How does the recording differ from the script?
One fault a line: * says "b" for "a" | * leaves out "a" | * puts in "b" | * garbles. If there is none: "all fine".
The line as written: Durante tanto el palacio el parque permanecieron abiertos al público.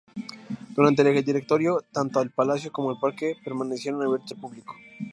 * puts in "el Directorio"
* puts in "como"